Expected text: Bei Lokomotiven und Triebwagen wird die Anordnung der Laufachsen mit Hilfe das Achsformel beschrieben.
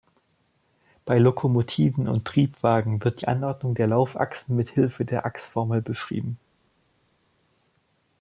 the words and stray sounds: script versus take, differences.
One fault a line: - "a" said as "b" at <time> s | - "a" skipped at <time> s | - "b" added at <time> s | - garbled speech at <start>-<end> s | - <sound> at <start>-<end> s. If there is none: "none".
- "das" said as "der" at 5.1 s